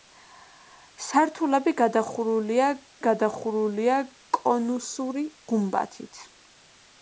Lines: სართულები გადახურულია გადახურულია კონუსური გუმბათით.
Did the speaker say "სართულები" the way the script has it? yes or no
yes